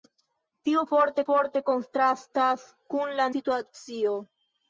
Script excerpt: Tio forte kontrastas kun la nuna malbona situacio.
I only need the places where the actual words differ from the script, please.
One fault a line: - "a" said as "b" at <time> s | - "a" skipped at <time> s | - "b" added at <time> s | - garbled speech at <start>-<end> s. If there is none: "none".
- "forte" added at 1.3 s
- "nuna malbona" skipped at 3.3 s